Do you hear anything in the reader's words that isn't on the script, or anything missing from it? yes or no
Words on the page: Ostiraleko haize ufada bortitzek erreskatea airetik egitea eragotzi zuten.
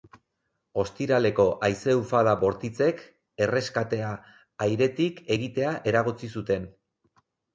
no